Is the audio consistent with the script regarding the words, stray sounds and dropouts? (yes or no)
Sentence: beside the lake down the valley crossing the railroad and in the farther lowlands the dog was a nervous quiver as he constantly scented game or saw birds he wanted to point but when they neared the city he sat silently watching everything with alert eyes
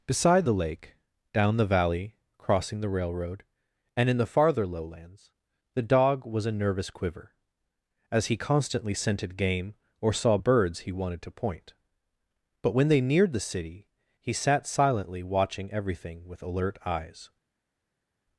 yes